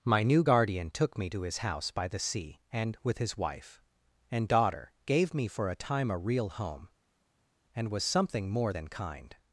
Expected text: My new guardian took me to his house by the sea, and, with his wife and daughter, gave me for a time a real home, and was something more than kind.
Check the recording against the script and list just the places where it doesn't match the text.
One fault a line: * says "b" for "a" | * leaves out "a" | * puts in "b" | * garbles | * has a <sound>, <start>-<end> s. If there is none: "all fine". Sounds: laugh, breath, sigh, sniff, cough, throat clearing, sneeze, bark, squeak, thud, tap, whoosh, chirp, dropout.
all fine